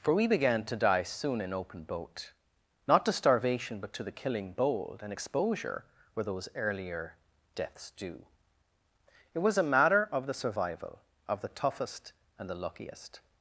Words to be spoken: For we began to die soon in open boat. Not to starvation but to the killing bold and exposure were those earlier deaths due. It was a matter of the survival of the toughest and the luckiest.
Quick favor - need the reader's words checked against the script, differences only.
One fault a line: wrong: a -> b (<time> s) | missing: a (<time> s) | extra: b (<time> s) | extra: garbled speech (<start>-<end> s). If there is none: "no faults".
no faults